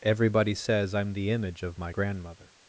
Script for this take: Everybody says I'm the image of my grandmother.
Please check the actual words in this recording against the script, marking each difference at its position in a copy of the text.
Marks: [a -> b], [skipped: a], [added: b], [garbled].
Everybody says I'm the image of my grandmother.